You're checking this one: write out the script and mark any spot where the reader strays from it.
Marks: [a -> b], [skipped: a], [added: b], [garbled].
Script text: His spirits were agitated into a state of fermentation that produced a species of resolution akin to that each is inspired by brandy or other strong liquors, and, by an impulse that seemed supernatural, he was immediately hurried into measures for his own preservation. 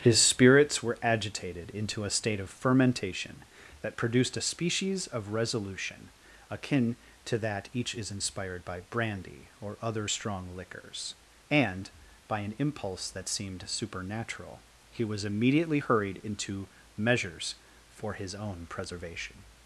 His spirits were agitated into a state of fermentation that produced a species of resolution akin to that each is inspired by brandy or other strong liquors, and, by an impulse that seemed supernatural, he was immediately hurried into measures for his own preservation.